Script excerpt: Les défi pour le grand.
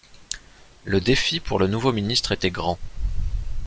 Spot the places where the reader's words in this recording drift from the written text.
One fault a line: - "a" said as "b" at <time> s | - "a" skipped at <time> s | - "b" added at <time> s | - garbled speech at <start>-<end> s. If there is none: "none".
- "Les" said as "Le" at 0.8 s
- "nouveau ministre était" added at 1.7 s